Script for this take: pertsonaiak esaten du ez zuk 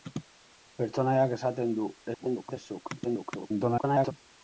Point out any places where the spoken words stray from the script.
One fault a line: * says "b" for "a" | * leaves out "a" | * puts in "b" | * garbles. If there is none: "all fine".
* garbles
* garbles